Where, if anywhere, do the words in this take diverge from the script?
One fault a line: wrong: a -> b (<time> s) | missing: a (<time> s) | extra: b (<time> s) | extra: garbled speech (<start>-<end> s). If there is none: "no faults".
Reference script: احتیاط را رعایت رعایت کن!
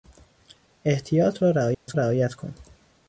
no faults